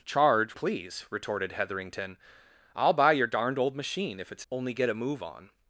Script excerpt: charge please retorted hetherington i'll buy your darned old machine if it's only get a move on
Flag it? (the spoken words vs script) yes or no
no